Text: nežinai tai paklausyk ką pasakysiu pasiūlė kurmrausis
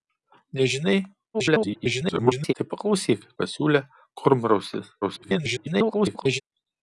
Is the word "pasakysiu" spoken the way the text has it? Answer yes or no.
no